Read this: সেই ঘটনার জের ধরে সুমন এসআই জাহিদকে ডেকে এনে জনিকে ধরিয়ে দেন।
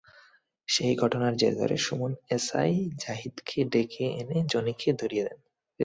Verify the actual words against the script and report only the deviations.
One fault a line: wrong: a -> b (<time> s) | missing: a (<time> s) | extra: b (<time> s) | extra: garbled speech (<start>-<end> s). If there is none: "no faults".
no faults